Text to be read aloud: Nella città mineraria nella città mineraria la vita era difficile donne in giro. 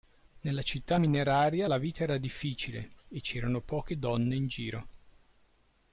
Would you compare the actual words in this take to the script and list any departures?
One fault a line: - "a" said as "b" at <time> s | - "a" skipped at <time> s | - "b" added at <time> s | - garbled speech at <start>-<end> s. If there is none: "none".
- "nella città mineraria" skipped at 1.7 s
- "e c'erano poche" added at 3.1 s